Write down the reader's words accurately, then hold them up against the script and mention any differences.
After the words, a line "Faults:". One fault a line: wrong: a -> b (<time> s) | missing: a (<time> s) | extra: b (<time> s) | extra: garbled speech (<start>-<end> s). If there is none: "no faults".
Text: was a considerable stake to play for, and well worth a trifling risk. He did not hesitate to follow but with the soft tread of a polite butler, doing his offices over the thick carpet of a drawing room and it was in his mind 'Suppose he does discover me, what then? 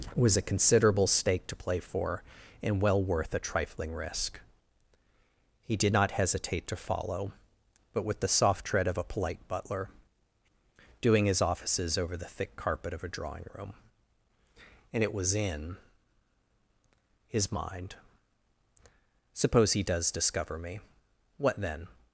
was a considerable stake to play for, and well worth a trifling risk. He did not hesitate to follow but with the soft tread of a polite butler, doing his offices over the thick carpet of a drawing room and it was in his mind 'Suppose he does discover me, what then?
Faults:
no faults